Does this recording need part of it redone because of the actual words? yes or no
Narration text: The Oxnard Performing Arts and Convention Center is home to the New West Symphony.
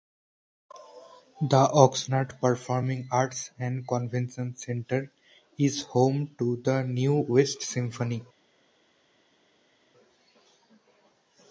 no